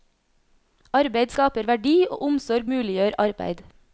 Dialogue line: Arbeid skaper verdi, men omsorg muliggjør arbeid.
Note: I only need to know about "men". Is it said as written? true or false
false